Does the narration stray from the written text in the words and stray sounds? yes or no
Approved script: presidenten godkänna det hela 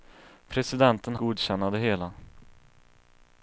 no